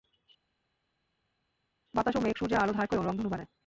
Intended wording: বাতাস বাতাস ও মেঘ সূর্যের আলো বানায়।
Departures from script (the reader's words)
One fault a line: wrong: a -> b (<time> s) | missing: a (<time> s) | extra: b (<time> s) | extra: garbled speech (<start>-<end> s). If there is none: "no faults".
missing: বাতাস (2.1 s)
extra: ধার করে রংধনু (2.7 s)